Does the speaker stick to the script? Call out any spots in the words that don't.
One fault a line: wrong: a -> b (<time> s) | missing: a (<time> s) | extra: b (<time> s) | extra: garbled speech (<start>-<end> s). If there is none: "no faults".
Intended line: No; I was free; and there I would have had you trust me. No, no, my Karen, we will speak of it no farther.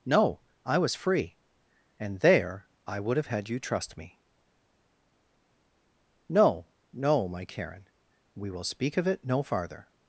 no faults